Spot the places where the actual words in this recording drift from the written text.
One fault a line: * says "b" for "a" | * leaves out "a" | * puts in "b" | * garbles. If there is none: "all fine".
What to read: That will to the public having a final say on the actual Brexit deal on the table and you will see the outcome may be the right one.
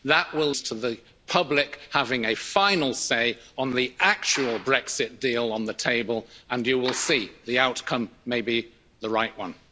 all fine